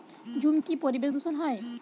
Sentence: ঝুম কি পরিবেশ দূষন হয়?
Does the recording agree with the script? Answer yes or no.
yes